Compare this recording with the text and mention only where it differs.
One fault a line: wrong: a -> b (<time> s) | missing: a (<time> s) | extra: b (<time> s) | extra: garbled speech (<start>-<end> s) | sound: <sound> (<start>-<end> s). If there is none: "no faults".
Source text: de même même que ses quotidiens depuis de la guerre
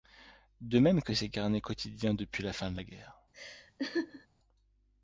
missing: même (1.0 s)
extra: carnets (1.3 s)
extra: la fin (2.4 s)
sound: laugh (3.3-4.3 s)